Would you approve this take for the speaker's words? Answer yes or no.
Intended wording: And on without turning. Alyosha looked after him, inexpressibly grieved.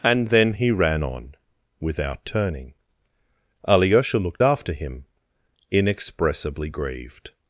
no